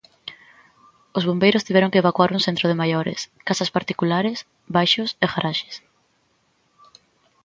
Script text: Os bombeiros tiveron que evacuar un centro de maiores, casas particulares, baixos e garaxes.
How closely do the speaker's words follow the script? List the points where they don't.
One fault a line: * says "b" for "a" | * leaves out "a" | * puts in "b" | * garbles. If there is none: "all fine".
all fine